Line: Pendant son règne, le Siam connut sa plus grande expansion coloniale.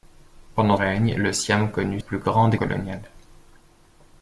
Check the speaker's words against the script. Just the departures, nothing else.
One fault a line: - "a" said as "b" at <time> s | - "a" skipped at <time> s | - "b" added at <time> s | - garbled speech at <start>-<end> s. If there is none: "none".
- "son" skipped at 0.8 s
- "sa" skipped at 2.0 s
- "expansion" skipped at 2.5 s